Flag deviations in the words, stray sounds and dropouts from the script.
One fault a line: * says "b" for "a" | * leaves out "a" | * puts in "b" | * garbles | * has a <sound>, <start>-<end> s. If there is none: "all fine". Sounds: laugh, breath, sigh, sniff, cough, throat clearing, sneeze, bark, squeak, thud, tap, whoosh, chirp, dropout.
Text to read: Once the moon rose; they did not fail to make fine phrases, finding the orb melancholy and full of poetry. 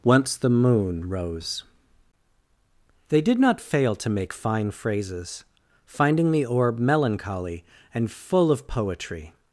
all fine